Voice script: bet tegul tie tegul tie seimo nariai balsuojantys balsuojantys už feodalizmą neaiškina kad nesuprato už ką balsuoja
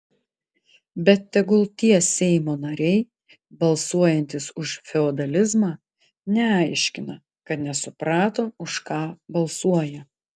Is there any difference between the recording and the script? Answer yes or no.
yes